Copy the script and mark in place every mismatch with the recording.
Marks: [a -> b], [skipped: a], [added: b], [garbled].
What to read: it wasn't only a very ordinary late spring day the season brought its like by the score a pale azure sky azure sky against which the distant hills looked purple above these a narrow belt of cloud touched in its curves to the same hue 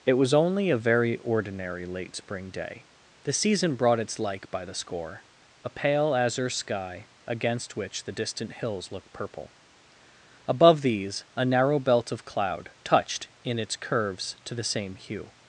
it [wasn't -> was] only a very ordinary late spring day the season brought its like by the score a pale azure sky [skipped: azure sky] against which the distant hills looked purple above these a narrow belt of cloud touched in its curves to the same hue